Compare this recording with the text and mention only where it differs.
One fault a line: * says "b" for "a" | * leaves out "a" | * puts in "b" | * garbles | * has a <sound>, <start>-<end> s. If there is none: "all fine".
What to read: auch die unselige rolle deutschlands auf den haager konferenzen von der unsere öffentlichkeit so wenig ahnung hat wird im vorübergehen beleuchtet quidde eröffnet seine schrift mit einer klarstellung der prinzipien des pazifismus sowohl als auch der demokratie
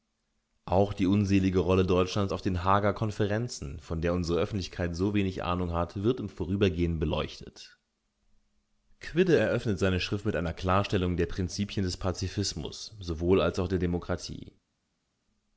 all fine